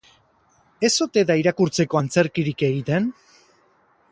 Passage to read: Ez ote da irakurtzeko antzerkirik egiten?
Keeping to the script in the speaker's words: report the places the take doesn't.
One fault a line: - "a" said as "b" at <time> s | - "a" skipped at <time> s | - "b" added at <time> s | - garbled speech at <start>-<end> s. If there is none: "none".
none